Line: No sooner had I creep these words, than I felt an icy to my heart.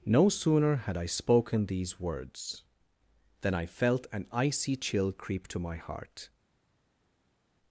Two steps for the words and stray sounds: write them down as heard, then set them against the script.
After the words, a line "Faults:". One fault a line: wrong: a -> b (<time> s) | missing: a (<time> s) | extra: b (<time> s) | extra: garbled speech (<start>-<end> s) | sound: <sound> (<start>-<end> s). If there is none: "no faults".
No sooner had I spoken these words, than I felt an icy chill creep to my heart.
Faults:
wrong: creep -> spoken (1.1 s)
extra: chill creep (4.8 s)